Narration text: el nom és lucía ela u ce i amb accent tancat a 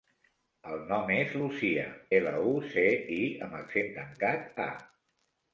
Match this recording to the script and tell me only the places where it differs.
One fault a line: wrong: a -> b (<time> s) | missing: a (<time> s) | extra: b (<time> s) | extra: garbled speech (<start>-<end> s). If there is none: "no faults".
no faults